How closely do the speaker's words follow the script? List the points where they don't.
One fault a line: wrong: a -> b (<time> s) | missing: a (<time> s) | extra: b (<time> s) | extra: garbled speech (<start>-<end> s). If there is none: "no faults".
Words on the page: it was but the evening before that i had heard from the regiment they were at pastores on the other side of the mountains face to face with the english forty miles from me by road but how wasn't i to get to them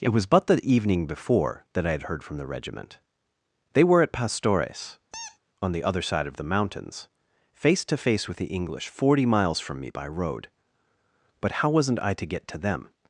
no faults